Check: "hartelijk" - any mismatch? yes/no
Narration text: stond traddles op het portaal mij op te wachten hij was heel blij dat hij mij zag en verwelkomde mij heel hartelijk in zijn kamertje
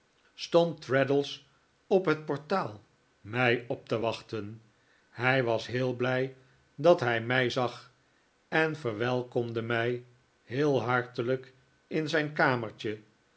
no